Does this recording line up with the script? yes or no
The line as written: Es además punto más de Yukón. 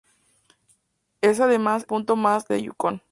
yes